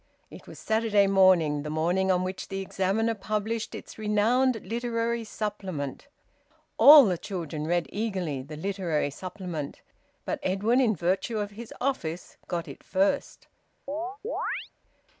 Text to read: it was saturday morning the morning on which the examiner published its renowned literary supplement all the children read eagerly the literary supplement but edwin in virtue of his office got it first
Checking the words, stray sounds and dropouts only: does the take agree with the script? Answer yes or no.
no